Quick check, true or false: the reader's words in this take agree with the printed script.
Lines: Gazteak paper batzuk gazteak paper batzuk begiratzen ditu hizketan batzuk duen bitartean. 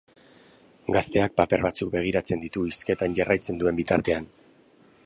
false